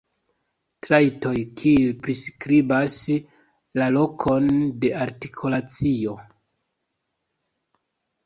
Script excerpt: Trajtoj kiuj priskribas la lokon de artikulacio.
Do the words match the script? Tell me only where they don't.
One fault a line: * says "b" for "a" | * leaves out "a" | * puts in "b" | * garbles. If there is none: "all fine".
all fine